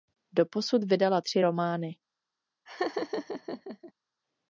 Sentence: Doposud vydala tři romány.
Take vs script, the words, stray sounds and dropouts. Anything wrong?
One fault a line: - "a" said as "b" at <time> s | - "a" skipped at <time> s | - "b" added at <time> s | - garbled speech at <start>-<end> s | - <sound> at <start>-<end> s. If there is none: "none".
- laugh at 2.7-3.9 s